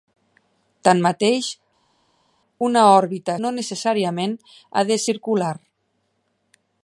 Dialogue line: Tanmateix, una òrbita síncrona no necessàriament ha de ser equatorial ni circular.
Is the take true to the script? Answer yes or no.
no